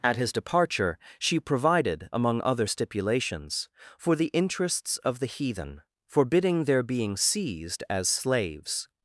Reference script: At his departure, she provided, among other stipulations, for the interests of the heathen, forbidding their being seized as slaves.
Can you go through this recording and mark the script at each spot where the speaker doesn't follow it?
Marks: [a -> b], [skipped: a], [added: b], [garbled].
At his departure, she provided, among other stipulations, for the interests of the heathen, forbidding their being seized as slaves.